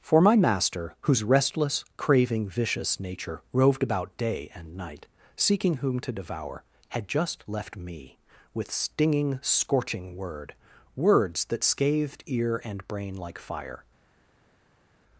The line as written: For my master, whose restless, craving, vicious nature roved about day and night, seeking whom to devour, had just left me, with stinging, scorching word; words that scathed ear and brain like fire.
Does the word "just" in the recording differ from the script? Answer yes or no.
no